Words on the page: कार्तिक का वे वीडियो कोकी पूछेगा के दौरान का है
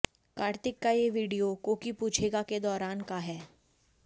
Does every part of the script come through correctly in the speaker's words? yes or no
no